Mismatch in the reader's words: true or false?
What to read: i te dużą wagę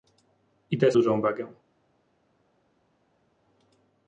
false